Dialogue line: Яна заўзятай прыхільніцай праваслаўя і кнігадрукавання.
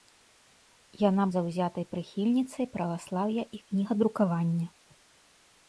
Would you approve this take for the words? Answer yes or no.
yes